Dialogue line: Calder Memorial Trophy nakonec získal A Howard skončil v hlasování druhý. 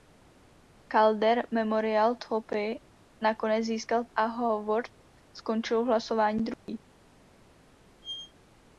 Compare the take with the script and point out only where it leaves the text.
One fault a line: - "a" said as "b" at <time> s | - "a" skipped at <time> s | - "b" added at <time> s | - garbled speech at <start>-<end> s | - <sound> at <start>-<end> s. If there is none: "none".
- dropout at 6.5-6.7 s
- squeak at 8.0-8.3 s